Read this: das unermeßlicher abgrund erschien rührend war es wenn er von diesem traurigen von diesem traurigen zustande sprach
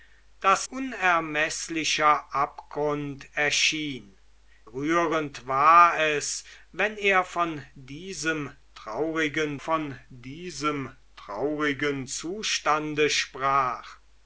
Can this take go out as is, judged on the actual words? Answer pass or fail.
pass